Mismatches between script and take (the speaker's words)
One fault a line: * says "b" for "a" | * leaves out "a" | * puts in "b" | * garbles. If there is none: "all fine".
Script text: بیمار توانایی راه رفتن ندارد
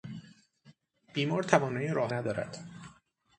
* leaves out "رفتن"